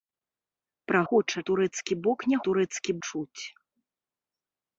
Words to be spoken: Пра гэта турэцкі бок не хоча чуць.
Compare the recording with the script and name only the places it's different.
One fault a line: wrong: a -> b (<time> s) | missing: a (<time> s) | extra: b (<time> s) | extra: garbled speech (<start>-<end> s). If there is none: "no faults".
wrong: гэта -> хоча (1.1 s)
wrong: хоча -> турэцкі (2.5 s)